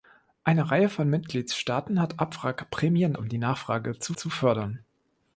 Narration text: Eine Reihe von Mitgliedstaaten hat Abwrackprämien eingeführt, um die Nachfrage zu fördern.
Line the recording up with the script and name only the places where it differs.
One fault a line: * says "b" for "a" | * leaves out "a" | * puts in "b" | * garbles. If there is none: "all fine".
* leaves out "eingeführt"
* puts in "zu"